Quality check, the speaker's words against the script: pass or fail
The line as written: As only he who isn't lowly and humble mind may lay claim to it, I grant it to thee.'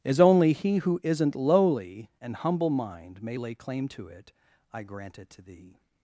pass